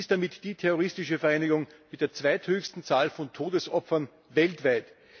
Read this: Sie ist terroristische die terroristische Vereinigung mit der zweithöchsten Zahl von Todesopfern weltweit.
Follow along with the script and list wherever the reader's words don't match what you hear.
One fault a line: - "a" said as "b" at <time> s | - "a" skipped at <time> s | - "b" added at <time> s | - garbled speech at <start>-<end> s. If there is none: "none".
- "terroristische" said as "damit" at 0.1 s